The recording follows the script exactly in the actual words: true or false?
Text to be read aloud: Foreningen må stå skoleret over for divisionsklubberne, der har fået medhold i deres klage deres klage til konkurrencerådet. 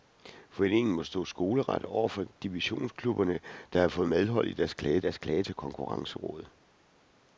true